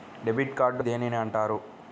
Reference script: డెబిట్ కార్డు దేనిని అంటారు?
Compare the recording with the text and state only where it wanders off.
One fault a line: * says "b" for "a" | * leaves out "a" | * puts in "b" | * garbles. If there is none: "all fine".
all fine